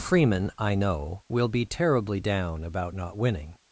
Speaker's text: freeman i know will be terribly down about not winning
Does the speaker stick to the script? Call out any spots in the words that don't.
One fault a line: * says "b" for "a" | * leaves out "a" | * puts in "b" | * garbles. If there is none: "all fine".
all fine